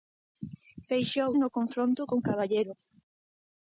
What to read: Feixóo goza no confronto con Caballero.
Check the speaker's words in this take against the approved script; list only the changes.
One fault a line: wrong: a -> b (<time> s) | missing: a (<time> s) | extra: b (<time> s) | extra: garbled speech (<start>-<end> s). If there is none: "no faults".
missing: goza (1.3 s)